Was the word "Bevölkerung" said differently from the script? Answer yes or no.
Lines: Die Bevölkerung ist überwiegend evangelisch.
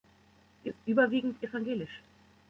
yes